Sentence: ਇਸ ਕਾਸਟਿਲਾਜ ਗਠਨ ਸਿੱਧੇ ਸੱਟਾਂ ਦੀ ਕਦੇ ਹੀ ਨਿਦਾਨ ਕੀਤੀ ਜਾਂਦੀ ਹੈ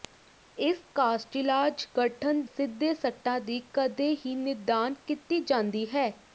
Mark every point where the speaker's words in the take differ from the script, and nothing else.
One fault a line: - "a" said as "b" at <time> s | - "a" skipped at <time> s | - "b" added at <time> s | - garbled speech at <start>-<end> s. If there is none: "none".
none